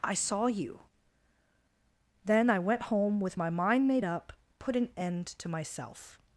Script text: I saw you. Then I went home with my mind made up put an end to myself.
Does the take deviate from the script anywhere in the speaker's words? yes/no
no